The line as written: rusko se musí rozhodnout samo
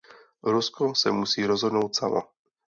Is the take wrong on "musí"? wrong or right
right